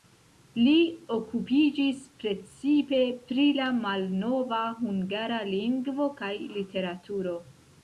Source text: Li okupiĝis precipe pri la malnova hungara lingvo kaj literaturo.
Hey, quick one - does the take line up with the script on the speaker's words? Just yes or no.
yes